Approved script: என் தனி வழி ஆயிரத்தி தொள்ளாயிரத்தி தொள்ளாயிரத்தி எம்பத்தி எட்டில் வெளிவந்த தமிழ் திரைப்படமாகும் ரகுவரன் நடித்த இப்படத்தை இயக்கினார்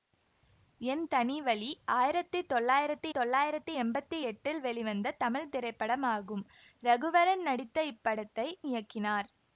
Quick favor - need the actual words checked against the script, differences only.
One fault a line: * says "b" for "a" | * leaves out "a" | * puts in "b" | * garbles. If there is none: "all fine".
all fine